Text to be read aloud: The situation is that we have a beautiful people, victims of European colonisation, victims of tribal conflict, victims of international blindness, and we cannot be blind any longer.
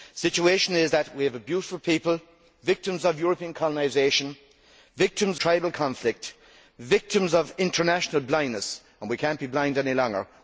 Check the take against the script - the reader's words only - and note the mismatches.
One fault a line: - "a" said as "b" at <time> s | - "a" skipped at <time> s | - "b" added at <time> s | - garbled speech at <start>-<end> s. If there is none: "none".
- "of" skipped at 5.4 s